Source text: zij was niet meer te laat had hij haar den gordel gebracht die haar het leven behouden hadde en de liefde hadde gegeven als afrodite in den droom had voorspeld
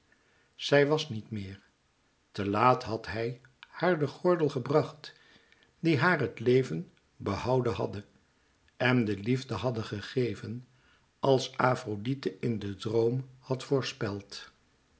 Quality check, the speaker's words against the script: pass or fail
pass